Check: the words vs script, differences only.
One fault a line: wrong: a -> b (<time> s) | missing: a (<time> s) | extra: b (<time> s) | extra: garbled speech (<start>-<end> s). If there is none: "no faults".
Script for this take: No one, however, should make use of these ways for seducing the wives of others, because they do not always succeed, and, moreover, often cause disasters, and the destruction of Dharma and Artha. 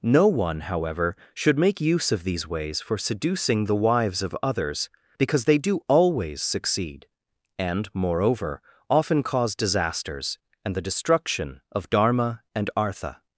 missing: not (5.8 s)